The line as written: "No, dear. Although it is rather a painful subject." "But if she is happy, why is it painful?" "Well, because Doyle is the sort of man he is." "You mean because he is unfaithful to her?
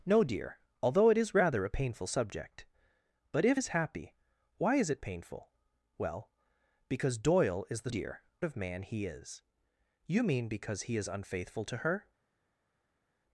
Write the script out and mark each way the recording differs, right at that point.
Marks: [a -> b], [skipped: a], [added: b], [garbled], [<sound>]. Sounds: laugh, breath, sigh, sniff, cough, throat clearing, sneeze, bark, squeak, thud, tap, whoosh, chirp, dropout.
"No, dear. Although it is rather a painful subject." "But if [skipped: she] is happy, why is it painful?" "Well, because Doyle is the [sort -> dear] of man he is." "You mean because he is unfaithful to her?